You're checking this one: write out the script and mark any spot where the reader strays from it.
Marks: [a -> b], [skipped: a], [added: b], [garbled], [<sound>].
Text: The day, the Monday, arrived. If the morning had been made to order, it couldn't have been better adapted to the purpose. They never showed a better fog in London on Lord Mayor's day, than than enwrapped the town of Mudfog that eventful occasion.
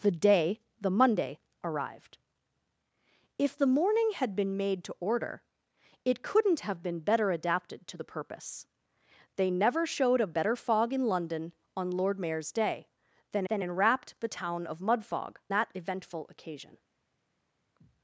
The day, the Monday, arrived. If the morning had been made to order, it couldn't have been better adapted to the purpose. They never showed a better fog in London on Lord Mayor's day, than than enwrapped the town of Mudfog that eventful occasion.